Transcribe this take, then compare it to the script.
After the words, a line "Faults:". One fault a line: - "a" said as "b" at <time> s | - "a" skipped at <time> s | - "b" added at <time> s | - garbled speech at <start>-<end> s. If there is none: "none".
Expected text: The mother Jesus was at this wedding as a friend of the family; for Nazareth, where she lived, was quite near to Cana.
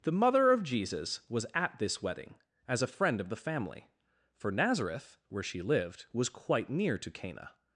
The mother of Jesus was at this wedding as a friend of the family; for Nazareth, where she lived, was quite near to Cana.
Faults:
- "of" added at 0.5 s